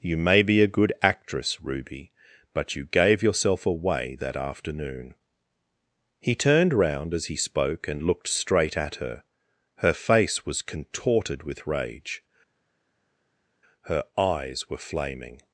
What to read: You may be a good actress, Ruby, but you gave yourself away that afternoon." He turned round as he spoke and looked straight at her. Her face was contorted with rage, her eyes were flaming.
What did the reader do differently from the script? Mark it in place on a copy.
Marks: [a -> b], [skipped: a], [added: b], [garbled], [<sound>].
You may be a good actress, Ruby, but you gave yourself away that afternoon." He turned round as he spoke and looked straight at her. Her face was contorted with rage, her eyes were flaming.